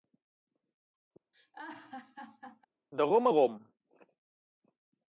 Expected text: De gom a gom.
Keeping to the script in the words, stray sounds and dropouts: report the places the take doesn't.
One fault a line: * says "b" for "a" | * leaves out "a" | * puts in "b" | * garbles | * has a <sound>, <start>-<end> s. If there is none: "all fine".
* has a laugh, 1.3-2.7 s